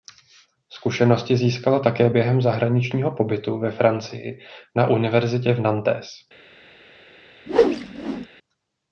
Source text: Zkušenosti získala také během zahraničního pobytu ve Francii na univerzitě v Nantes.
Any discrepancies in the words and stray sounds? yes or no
yes